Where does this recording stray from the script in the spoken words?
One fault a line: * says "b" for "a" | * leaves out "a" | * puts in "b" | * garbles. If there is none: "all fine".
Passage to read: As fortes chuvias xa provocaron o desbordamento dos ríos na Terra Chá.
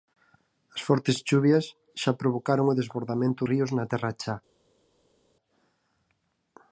* leaves out "dos"